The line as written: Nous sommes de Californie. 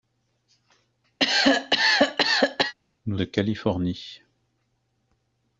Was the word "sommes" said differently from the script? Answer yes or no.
yes